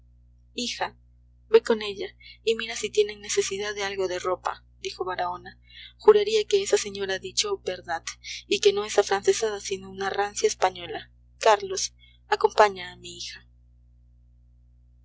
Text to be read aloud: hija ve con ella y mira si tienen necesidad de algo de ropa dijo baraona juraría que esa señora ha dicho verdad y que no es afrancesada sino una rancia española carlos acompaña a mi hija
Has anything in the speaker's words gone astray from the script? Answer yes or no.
no